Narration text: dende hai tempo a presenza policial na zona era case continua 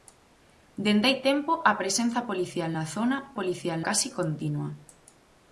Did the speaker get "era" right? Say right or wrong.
wrong